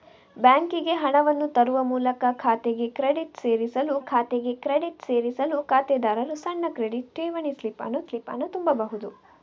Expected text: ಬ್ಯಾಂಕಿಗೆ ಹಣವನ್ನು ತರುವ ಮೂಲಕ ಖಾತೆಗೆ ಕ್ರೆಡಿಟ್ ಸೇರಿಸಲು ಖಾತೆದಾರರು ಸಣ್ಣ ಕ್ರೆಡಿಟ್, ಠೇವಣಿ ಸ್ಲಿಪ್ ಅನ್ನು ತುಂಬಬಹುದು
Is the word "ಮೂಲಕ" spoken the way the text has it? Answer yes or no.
yes